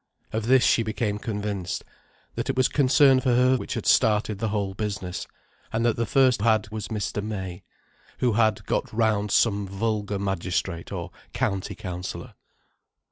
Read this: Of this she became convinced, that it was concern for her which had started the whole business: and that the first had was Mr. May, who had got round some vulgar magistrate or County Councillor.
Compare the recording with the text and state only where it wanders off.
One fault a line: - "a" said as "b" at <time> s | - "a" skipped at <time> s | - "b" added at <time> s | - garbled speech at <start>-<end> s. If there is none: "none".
none